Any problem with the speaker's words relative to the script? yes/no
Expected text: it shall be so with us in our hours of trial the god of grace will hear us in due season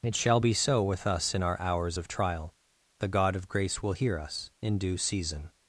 no